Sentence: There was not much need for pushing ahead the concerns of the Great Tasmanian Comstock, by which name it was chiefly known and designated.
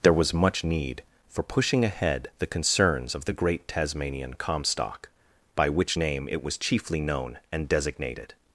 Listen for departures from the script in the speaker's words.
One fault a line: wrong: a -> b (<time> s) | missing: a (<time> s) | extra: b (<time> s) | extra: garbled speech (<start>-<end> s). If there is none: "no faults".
missing: not (0.3 s)